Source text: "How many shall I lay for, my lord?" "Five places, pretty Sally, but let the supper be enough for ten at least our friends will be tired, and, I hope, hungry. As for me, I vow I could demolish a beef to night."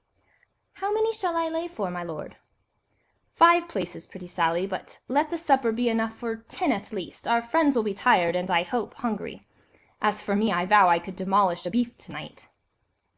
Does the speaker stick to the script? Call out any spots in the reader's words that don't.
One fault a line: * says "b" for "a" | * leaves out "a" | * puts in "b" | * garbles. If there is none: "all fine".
all fine